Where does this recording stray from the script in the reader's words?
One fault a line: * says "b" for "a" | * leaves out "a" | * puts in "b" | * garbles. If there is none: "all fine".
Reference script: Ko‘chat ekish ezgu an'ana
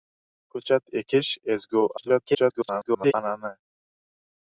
* garbles